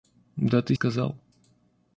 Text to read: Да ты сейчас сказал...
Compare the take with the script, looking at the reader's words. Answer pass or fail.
fail